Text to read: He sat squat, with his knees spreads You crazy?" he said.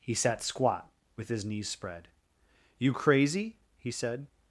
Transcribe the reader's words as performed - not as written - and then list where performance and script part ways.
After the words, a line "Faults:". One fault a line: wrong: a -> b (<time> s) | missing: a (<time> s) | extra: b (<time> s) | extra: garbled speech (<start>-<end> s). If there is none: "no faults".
He sat squat, with his knees spread You crazy?" he said.
Faults:
wrong: spreads -> spread (1.7 s)